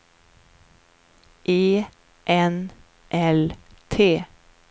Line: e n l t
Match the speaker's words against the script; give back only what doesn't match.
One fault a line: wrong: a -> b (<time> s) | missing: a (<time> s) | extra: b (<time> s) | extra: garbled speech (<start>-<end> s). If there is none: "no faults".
no faults